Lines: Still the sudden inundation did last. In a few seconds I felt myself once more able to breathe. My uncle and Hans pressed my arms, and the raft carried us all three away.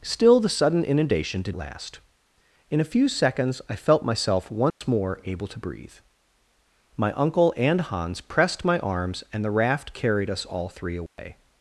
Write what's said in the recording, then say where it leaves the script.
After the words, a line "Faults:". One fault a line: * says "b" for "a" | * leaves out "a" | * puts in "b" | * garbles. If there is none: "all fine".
Still the sudden inundation did last. In a few seconds I felt myself once more able to breathe. My uncle and Hans pressed my arms, and the raft carried us all three away.
Faults:
all fine